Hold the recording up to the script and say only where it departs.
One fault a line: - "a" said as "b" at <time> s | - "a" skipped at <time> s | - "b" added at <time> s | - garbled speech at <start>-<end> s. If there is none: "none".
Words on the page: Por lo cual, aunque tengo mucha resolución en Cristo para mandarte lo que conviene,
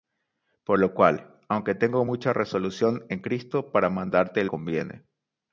- "lo que" skipped at 4.5 s